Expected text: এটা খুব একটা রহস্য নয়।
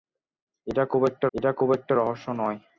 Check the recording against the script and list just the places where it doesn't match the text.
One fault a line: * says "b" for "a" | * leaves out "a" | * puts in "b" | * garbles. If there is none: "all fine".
* puts in "এটা খুব একটা"